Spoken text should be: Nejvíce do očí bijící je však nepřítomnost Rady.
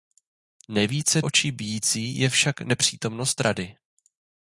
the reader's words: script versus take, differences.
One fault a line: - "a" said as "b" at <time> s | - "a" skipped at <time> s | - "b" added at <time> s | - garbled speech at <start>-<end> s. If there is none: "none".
- "do" skipped at 1.2 s